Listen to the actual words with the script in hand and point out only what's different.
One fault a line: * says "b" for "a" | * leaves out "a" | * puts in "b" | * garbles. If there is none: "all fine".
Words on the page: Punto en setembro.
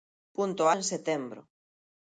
all fine